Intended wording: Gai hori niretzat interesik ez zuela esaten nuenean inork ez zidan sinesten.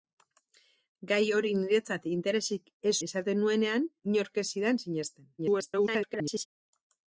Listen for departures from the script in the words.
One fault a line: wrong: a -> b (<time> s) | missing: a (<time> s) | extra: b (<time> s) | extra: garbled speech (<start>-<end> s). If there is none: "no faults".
missing: zuela (3.0 s)
extra: garbled speech (5.4-6.5 s)